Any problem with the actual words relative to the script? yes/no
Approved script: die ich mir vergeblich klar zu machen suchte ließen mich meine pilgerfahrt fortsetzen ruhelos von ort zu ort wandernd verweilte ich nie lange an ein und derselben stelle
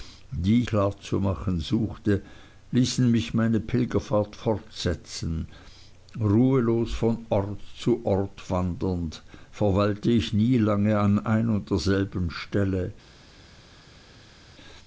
yes